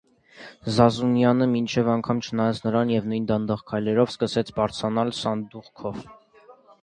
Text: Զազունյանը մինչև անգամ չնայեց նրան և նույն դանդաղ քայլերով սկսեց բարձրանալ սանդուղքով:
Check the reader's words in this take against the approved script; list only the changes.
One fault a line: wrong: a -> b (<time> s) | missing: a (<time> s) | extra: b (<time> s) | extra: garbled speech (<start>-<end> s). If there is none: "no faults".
no faults